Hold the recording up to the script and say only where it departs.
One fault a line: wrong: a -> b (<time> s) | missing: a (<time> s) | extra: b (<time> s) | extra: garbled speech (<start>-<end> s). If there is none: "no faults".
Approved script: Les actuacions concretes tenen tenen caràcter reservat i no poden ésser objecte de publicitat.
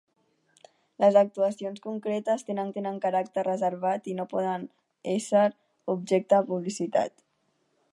no faults